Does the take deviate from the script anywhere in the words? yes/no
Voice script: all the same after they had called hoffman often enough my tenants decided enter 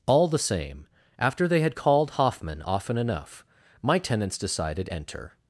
no